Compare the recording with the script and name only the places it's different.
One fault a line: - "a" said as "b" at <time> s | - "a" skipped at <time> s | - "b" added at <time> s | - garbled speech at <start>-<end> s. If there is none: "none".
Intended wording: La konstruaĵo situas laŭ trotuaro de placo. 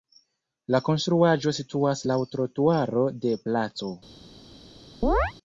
none